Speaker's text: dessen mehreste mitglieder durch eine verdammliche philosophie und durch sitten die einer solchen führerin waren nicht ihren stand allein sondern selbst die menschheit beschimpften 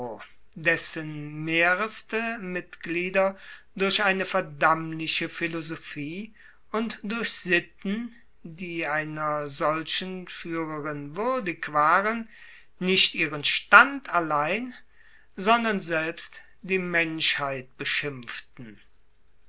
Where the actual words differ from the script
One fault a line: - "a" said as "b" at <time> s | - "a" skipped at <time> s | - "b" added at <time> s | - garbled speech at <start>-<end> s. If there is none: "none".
- "würdig" added at 11.2 s